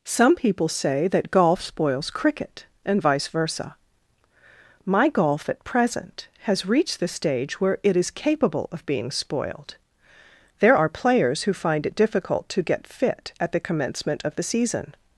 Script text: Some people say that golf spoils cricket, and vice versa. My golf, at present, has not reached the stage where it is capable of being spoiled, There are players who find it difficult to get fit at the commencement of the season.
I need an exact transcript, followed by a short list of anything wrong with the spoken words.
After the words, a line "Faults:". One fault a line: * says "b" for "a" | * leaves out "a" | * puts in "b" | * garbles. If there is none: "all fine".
Some people say that golf spoils cricket, and vice versa. My golf, at present, has reached the stage where it is capable of being spoiled, There are players who find it difficult to get fit at the commencement of the season.
Faults:
* leaves out "not"